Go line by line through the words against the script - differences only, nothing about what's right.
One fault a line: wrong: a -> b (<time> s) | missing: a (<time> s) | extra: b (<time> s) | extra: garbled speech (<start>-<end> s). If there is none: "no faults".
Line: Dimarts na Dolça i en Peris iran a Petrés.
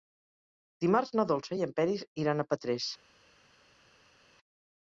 no faults